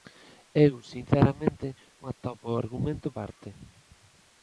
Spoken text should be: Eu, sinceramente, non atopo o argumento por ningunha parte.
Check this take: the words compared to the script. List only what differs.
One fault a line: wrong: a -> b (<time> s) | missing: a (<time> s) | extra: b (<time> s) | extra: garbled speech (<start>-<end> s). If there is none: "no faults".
missing: non (1.7 s)
missing: por ningunha (3.1 s)